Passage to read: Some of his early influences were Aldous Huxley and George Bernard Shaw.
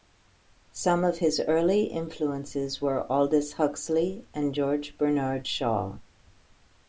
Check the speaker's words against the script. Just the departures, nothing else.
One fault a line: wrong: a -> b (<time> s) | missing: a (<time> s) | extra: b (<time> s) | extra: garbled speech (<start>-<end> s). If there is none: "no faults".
no faults